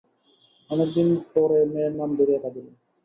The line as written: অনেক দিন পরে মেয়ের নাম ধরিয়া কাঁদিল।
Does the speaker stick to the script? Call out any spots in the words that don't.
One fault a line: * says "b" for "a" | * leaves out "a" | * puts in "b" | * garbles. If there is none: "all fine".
all fine